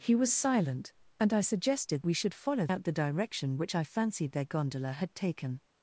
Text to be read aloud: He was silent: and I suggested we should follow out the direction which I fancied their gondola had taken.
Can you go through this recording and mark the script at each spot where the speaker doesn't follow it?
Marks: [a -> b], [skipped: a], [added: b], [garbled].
He was silent: and I suggested we should follow out the direction which I fancied their gondola had taken.